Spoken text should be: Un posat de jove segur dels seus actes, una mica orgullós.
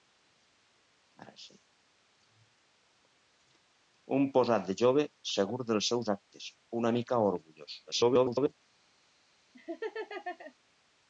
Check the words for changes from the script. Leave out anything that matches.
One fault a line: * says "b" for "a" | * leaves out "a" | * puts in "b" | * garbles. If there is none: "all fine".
* garbles